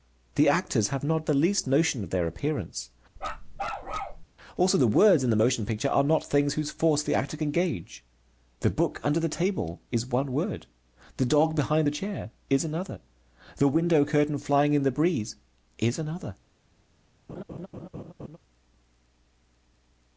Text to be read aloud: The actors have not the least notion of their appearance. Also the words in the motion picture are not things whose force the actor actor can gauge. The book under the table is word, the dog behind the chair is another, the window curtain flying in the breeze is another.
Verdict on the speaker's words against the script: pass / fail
fail